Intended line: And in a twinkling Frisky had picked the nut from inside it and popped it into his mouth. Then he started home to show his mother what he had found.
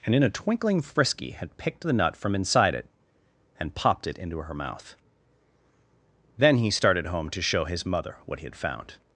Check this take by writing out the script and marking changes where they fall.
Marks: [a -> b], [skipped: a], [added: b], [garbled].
And in a twinkling Frisky had picked the nut from inside it and popped it into [his -> her] mouth. Then he started home to show his mother what he had found.